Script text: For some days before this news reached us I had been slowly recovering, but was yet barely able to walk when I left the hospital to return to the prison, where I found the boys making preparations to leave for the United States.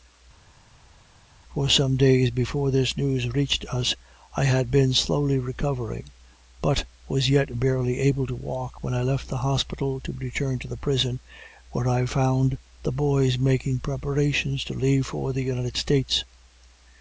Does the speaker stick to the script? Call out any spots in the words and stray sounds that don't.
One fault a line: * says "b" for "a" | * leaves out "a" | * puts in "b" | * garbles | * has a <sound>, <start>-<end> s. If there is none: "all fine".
all fine